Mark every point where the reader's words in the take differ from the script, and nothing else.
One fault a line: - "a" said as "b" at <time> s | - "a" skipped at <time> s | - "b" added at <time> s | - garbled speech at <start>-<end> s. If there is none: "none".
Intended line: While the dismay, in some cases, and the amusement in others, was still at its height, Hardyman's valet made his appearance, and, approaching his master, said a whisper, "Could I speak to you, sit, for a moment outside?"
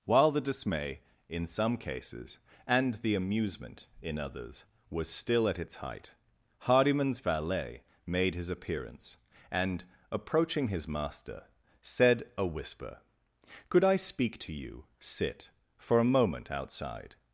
none